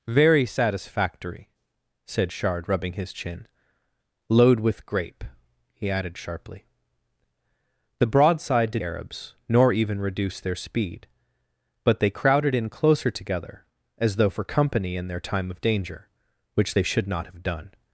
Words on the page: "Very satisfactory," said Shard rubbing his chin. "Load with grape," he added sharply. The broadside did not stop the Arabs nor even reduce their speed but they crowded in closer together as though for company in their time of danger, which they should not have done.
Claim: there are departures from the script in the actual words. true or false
true